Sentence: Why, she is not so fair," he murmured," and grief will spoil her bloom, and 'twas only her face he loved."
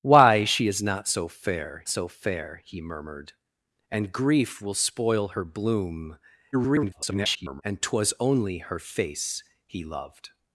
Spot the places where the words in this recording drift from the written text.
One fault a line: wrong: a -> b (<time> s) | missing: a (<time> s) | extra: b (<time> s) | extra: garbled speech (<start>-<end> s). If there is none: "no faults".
extra: so fair (1.9 s)
extra: garbled speech (6.5-7.6 s)